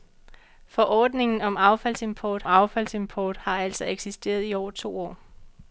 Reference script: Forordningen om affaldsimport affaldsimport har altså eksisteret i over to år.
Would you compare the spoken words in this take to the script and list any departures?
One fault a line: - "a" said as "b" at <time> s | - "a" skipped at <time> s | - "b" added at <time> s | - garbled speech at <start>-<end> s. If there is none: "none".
none